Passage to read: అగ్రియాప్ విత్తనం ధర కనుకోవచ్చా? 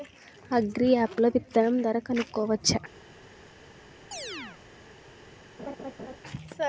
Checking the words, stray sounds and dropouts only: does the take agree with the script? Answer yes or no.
no